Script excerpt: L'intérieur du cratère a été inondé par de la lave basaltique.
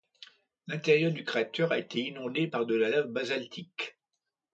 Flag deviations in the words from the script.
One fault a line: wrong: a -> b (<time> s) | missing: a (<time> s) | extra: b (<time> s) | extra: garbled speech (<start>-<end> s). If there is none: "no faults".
no faults